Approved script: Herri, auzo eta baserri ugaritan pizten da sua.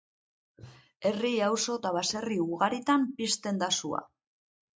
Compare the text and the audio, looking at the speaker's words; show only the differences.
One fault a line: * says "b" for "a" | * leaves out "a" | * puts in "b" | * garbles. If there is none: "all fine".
all fine